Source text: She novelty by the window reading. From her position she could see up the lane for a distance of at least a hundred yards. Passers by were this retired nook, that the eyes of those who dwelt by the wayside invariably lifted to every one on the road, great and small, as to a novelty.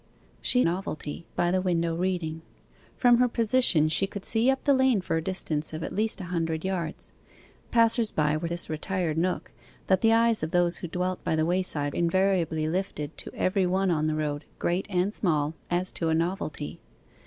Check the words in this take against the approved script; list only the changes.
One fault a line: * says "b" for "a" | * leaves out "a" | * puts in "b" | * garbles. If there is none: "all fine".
all fine